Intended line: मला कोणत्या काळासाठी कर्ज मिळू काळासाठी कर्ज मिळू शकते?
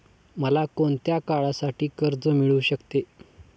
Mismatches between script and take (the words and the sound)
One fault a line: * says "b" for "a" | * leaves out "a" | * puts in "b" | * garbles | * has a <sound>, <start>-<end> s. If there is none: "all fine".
* leaves out "काळासाठी कर्ज मिळू"